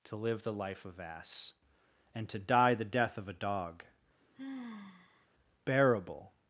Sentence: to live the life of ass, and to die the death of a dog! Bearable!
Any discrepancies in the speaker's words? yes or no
no